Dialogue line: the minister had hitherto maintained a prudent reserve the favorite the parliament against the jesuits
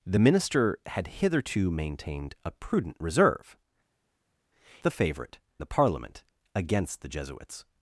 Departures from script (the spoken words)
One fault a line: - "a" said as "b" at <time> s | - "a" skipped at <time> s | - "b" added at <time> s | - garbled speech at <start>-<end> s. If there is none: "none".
none